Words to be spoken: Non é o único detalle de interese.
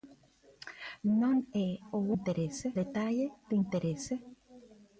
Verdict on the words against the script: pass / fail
fail